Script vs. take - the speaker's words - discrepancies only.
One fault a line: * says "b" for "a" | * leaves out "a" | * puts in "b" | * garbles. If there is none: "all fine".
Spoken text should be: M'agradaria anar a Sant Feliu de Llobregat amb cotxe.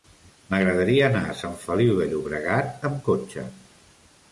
all fine